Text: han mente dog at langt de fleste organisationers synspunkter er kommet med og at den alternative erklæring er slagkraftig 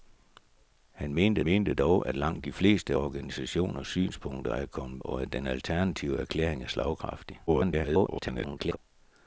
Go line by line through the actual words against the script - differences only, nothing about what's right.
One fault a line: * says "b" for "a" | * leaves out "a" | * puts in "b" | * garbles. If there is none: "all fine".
* puts in "mente"
* leaves out "med"
* garbles